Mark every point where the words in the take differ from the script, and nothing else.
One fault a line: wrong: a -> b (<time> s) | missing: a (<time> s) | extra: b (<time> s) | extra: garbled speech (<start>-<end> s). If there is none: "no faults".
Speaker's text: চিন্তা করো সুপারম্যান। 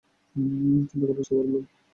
no faults